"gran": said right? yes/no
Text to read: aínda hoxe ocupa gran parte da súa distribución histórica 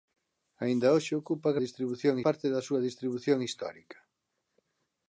no